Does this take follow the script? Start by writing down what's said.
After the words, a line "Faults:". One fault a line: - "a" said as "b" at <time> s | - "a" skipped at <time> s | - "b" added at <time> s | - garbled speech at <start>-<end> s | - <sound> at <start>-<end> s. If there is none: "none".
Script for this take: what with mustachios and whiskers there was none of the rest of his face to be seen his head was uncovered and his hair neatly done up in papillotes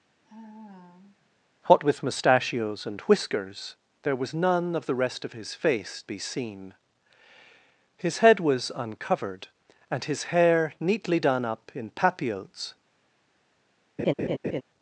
what with mustachios and whiskers there was none of the rest of his face be seen his head was uncovered and his hair neatly done up in papillotes
Faults:
- sigh at 0.2-1.4 s
- "to" skipped at 6.0 s
- laugh at 14.0-14.6 s